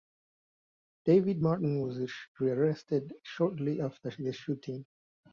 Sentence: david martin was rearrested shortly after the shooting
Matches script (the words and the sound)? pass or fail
pass